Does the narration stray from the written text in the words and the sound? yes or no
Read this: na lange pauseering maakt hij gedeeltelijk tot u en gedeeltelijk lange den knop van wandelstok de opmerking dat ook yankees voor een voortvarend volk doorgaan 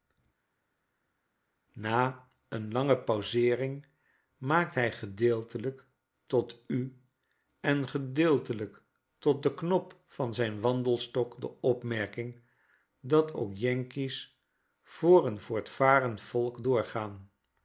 yes